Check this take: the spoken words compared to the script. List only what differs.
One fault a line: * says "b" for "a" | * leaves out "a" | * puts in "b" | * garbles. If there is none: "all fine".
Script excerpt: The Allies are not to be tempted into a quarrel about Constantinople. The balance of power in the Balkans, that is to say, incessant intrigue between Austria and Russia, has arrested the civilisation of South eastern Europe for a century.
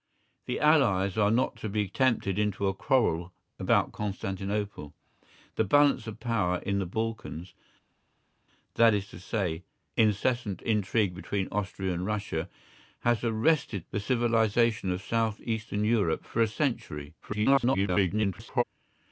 * garbles